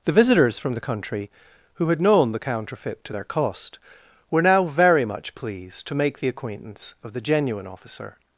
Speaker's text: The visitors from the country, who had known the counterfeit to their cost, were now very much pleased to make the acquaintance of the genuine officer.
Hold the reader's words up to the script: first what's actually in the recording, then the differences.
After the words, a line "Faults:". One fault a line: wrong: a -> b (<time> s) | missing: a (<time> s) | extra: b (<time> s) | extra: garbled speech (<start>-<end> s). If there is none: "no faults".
The visitors from the country, who had known the counterfeit to their cost, were now very much pleased to make the acquaintance of the genuine officer.
Faults:
no faults